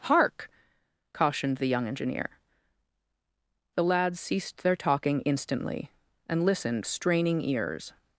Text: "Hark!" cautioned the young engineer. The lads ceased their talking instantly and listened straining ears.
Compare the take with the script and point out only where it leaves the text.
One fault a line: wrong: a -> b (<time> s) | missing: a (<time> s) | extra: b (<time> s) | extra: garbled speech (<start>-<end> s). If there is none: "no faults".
no faults